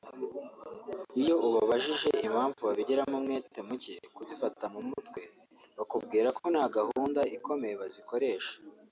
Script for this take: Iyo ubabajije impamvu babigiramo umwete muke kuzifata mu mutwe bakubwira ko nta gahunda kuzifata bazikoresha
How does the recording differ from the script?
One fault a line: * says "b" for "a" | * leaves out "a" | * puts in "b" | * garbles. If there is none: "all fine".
* says "ikomeye" for "kuzifata"